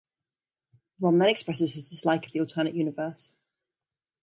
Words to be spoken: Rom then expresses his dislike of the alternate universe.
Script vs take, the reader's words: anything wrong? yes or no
no